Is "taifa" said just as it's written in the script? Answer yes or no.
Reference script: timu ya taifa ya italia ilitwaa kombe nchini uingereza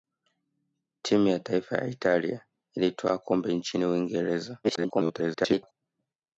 yes